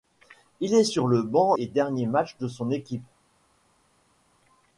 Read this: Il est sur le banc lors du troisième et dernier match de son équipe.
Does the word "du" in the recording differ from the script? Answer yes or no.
yes